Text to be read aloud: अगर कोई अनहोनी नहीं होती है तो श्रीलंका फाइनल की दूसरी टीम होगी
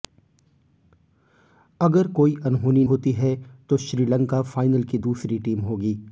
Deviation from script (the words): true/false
true